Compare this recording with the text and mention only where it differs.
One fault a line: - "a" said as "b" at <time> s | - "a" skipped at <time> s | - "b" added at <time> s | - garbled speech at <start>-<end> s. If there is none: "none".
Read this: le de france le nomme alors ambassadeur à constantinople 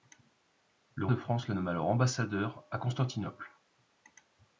none